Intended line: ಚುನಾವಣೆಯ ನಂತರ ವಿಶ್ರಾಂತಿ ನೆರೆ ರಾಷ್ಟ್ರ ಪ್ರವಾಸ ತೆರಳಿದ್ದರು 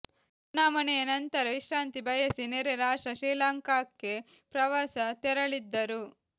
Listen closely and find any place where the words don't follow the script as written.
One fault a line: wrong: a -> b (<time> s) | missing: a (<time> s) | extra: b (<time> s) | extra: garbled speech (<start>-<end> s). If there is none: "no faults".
extra: ಬಯಸಿ (2.1 s)
extra: ಶ್ರೀಲಂಕಾಕ್ಕೆ (3.1 s)